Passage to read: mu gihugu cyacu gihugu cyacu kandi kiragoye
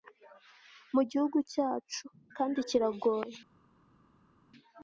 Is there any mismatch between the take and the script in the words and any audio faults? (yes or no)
yes